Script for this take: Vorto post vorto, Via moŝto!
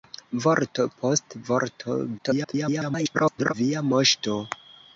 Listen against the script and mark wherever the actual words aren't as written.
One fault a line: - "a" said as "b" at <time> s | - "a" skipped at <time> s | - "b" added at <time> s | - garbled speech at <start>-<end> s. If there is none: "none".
- garbled speech at 2.2-3.5 s